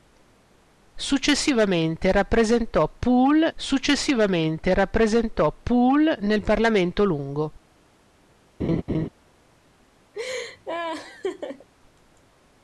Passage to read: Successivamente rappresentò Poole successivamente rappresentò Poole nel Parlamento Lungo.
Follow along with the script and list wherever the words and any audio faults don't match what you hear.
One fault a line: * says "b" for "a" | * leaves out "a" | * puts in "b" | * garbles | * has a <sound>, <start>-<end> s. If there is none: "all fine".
* has a laugh, 8.6-9.1 s
* has a laugh, 10.1-11.7 s